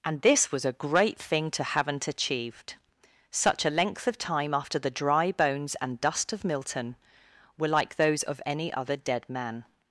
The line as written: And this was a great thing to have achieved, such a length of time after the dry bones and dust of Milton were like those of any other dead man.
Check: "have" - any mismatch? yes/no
yes